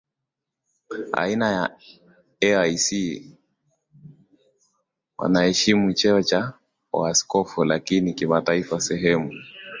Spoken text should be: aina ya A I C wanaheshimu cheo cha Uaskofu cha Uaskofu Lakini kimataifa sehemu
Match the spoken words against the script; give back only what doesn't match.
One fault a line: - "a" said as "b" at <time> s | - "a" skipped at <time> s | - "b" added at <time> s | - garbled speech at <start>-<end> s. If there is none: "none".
- "cha Uaskofu" skipped at 7.6 s